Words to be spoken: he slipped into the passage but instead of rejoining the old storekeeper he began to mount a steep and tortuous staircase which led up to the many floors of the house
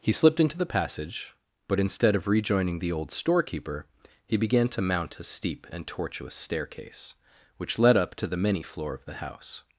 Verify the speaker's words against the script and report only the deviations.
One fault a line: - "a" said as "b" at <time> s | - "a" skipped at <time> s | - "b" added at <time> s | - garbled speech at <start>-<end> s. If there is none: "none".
- "floors" said as "floor" at 8.6 s